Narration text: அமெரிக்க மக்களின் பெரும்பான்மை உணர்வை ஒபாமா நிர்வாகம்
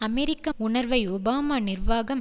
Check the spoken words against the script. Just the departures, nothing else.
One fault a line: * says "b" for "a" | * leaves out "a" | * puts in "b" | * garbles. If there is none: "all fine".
* leaves out "மக்களின் பெரும்பான்மை"